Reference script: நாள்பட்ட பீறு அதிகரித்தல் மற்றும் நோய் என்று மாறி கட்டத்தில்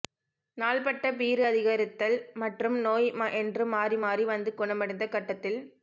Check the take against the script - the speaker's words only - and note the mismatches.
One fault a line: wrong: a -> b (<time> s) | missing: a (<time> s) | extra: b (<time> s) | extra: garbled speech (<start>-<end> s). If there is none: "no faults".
extra: மாறி வந்து குணமடைந்த (4.0 s)